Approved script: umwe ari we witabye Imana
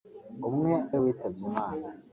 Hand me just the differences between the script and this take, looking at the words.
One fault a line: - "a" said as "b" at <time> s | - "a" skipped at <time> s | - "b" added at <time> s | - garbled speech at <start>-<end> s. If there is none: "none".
- "ari" skipped at 0.7 s